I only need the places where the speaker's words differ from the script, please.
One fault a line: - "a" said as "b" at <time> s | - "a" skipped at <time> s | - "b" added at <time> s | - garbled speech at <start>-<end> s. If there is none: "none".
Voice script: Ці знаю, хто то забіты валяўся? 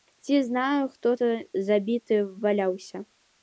none